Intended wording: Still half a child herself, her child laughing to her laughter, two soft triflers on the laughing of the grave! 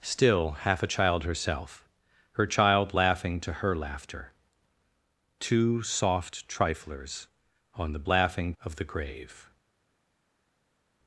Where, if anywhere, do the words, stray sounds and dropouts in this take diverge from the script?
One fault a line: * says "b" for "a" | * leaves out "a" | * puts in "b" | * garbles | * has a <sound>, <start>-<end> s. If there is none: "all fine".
all fine